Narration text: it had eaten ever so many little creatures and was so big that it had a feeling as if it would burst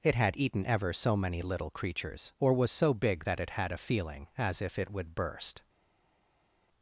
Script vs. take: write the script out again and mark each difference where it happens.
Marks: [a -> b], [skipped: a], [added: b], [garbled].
it had eaten ever so many little creatures [and -> or] was so big that it had a feeling as if it would burst